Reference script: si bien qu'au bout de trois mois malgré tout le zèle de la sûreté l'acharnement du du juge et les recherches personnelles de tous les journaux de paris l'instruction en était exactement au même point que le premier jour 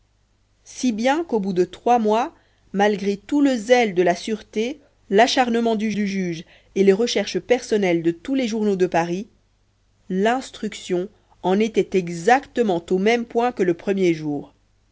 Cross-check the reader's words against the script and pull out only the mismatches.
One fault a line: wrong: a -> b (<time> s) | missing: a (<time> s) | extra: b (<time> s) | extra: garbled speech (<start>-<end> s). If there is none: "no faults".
no faults